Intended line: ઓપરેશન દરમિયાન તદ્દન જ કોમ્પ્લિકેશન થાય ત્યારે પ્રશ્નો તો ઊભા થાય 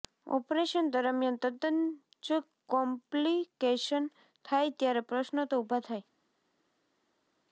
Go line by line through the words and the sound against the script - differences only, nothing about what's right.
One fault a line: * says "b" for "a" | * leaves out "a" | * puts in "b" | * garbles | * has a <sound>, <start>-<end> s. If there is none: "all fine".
all fine